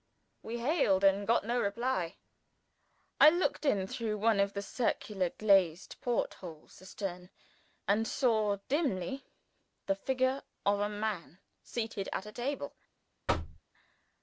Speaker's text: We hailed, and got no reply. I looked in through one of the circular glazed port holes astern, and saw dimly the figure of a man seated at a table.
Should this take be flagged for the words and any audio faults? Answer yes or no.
yes